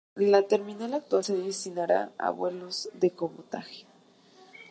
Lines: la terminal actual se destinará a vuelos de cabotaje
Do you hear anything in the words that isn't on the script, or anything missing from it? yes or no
no